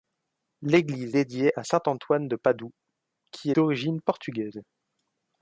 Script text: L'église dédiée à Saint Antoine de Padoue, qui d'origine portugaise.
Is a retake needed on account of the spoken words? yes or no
no